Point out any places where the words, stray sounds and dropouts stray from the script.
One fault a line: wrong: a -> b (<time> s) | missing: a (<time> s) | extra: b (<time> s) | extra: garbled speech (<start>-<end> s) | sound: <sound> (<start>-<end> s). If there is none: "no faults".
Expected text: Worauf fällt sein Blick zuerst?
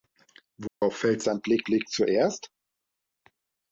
sound: dropout (0.7-0.8 s)
extra: Blick (1.6 s)